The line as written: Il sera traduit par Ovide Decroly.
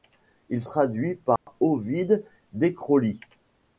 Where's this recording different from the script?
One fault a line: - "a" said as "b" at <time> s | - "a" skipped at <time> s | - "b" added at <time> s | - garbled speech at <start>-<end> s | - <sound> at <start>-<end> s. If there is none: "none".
- "sera" skipped at 0.6 s
- dropout at 1.4-1.5 s